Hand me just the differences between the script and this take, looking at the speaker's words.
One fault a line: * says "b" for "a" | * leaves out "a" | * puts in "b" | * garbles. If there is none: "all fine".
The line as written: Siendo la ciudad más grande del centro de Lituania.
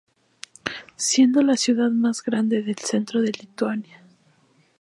all fine